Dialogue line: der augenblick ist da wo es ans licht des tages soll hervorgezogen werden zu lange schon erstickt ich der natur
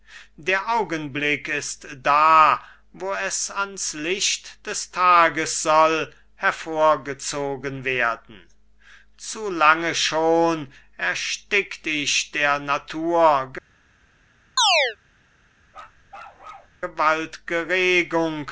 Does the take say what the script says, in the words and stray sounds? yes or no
no